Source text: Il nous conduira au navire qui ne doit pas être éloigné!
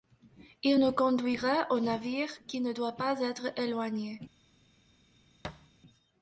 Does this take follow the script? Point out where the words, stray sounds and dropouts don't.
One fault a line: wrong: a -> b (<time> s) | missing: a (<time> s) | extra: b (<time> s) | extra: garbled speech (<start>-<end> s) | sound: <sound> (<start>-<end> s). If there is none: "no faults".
sound: thud (5.4-5.7 s)